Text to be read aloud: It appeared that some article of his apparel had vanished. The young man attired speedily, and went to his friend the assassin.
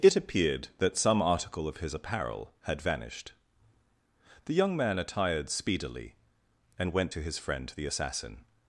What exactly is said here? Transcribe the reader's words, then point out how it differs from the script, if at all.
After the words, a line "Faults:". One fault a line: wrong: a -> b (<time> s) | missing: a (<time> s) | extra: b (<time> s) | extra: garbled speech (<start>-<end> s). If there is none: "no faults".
It appeared that some article of his apparel had vanished. The young man attired speedily, and went to his friend the assassin.
Faults:
no faults